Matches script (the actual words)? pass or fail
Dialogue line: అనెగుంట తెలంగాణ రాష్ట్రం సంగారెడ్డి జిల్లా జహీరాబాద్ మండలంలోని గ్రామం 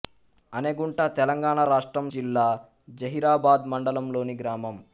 fail